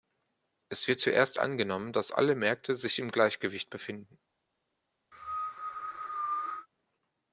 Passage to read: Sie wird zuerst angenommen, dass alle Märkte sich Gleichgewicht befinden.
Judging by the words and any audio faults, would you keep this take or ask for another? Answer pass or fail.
fail